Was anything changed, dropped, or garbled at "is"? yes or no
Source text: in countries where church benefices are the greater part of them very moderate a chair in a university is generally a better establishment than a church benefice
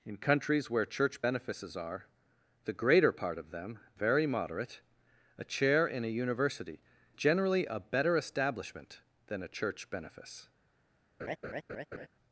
yes